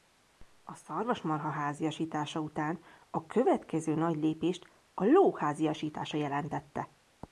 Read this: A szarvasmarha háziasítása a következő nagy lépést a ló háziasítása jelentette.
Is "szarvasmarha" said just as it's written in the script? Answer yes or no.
yes